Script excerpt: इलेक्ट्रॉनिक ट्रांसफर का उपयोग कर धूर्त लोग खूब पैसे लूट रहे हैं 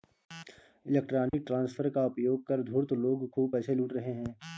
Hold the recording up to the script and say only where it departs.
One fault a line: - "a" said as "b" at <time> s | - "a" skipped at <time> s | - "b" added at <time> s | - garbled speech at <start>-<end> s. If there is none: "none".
none